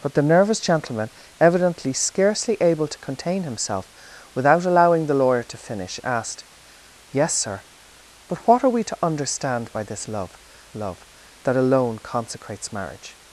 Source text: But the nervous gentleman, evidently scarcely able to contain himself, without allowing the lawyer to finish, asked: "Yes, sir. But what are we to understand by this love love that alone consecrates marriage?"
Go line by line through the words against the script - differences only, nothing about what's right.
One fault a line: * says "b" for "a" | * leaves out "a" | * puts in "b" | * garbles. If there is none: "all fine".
all fine